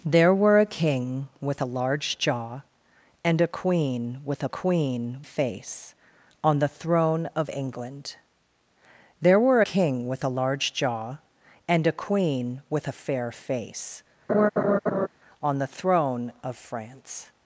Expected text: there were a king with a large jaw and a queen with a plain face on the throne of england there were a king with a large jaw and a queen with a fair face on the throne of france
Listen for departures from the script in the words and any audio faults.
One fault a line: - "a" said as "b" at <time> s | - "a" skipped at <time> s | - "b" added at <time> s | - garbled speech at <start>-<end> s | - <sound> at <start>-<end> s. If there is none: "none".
- "plain" said as "queen" at 4.5 s
- "a" skipped at 9.6 s
- laugh at 14.3-15.1 s